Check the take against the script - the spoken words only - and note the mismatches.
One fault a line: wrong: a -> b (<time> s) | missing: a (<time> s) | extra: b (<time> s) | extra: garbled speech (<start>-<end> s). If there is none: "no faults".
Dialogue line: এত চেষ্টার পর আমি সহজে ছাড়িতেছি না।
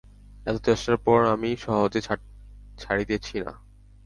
no faults